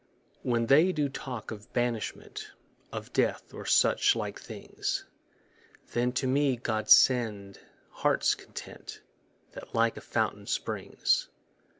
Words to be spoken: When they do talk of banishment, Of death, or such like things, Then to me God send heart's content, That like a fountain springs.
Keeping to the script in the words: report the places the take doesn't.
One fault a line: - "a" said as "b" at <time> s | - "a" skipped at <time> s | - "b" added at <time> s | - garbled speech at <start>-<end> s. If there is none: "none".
none